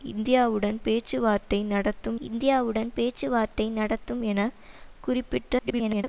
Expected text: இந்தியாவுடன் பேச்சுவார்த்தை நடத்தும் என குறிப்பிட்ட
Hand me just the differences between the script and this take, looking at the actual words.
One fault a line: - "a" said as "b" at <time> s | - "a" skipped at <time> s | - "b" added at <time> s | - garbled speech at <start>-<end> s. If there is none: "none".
- "இந்தியாவுடன் பேச்சுவார்த்தை நடத்தும்" added at 2.2 s
- garbled speech at 5.6-6.0 s